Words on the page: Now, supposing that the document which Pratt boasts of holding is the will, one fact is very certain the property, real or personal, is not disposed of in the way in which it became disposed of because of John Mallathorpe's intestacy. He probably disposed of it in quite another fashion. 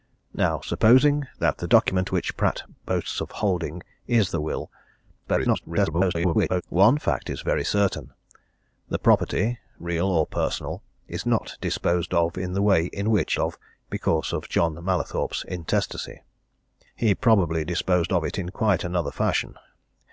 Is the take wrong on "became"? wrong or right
wrong